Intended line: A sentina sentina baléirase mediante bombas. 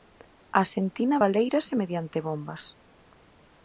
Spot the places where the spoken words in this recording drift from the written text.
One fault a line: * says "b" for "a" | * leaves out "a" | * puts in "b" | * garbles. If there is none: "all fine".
* leaves out "sentina"